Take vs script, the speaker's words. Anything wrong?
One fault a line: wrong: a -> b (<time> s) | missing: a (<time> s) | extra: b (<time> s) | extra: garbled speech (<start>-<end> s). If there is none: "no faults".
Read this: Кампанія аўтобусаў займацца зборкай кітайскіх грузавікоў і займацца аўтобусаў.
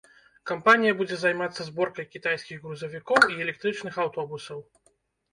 wrong: аўтобусаў -> будзе (1.0 s)
wrong: займацца -> электрычных (3.5 s)